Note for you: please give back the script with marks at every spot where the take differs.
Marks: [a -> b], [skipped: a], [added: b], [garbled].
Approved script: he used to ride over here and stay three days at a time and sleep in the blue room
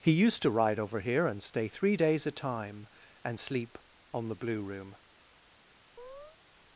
he used to ride over here and stay three days [skipped: at] a time and sleep [in -> on] the blue room